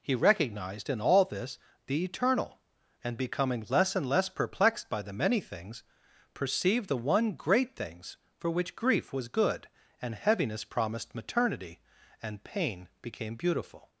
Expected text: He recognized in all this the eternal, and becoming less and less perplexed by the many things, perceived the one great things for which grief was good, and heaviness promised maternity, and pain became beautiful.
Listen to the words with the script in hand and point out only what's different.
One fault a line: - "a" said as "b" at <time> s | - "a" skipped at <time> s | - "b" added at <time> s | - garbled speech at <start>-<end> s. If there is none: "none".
none